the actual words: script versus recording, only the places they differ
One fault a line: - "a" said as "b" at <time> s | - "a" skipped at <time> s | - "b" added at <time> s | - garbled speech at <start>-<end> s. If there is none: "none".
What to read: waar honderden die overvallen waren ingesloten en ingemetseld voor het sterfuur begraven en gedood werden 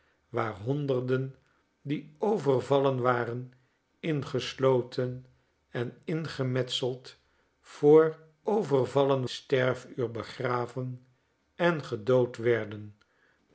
- "het" said as "overvallen" at 8.4 s